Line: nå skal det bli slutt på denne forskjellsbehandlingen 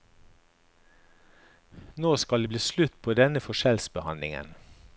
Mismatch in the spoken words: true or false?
false